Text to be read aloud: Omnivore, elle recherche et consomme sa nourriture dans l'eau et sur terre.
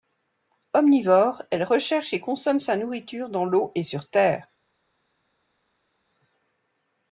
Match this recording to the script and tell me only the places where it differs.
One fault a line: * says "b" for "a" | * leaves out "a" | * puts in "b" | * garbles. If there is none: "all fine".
all fine